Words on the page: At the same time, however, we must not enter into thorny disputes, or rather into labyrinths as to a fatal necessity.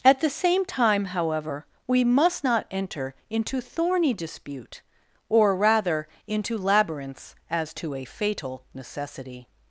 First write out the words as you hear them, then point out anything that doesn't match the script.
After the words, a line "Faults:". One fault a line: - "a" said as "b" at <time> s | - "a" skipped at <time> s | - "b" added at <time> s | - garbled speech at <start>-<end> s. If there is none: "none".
At the same time, however, we must not enter into thorny dispute, or rather into labyrinths as to a fatal necessity.
Faults:
- "disputes" said as "dispute" at 4.1 s